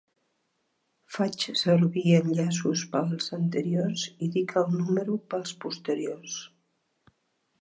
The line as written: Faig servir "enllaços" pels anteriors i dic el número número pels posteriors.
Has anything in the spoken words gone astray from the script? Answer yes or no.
yes